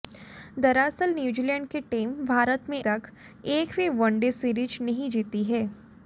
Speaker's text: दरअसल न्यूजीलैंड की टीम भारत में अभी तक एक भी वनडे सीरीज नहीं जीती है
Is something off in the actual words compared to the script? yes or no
yes